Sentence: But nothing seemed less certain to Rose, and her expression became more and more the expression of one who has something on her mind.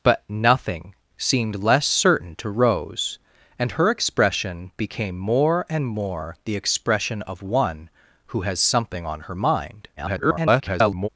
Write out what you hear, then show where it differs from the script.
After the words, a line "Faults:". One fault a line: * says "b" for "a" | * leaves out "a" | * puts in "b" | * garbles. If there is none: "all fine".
But nothing seemed less certain to Rose, and her expression became more and more the expression of one who has something on her mind. [garbled]
Faults:
* garbles